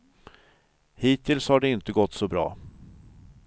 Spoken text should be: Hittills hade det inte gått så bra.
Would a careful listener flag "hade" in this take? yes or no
yes